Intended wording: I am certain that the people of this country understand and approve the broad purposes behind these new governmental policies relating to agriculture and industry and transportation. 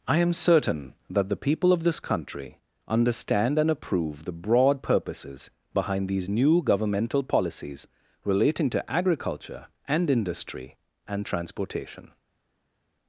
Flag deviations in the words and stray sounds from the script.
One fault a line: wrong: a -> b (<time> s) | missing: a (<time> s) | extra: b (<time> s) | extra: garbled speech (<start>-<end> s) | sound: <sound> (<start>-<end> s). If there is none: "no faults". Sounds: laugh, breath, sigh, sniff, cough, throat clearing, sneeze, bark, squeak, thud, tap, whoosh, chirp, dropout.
no faults